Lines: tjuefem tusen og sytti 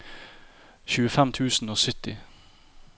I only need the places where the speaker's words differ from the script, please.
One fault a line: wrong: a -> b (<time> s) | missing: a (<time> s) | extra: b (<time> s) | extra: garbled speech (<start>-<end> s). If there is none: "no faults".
no faults